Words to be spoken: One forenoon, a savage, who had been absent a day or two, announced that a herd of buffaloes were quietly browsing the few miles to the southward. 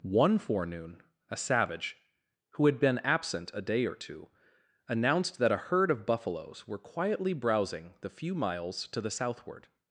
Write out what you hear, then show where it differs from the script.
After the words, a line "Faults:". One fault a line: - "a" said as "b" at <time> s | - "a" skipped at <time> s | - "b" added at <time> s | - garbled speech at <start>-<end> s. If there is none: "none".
One forenoon, a savage, who had been absent a day or two, announced that a herd of buffaloes were quietly browsing the few miles to the southward.
Faults:
none